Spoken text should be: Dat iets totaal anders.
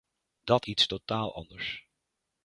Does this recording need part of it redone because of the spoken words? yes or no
no